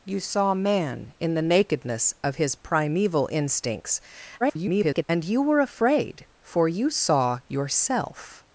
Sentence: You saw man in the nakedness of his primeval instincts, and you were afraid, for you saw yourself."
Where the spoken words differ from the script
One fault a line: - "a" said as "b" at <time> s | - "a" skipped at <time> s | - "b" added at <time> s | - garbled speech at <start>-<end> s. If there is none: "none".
- garbled speech at 4.4-5.0 s